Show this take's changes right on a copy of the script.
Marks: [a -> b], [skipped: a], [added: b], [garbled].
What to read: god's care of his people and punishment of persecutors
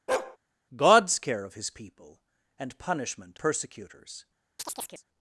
god's care of his people and punishment [skipped: of] persecutors